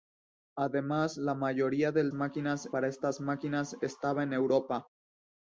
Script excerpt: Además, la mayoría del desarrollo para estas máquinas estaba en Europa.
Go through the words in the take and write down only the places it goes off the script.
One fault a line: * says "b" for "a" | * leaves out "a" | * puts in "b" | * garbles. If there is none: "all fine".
* says "máquinas" for "desarrollo"